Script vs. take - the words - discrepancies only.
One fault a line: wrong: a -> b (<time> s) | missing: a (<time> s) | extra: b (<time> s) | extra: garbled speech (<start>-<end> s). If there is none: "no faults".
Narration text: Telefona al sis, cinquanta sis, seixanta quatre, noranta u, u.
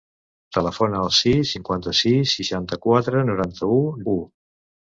no faults